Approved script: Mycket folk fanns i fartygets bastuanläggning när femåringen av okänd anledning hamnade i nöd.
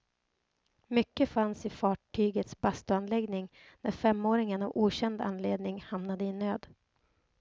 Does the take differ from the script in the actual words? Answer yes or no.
yes